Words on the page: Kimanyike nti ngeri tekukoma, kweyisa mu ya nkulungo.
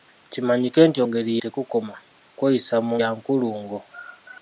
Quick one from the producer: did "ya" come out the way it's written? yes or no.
yes